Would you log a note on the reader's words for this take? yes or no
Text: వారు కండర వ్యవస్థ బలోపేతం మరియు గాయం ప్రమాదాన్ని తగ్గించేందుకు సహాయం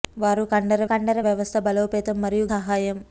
yes